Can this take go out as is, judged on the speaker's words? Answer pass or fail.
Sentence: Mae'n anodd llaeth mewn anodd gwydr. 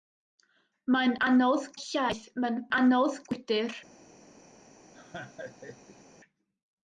pass